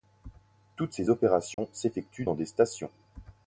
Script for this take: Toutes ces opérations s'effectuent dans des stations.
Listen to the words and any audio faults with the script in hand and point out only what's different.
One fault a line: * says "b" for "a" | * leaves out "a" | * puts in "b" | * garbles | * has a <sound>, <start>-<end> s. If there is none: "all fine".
* has a dropout, 1.5-1.6 s